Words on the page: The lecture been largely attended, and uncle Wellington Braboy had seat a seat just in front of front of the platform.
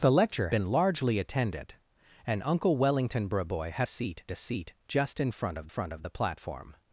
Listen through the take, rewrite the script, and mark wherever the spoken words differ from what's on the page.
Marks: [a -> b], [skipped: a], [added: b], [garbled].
The lecture been largely attended, and uncle Wellington Braboy had seat a seat just in front of front of the platform.